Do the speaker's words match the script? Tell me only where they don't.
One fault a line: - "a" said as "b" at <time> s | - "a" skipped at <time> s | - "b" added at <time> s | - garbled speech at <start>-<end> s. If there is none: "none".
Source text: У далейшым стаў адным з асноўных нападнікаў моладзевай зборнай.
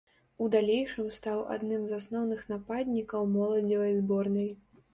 none